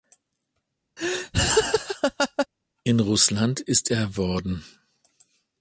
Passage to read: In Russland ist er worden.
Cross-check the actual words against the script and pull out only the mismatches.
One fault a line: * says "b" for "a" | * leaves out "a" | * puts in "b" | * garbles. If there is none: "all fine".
all fine